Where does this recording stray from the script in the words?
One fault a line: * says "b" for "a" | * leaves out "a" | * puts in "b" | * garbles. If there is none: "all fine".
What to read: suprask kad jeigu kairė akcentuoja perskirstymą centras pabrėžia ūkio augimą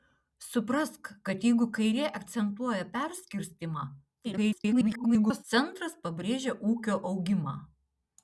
* garbles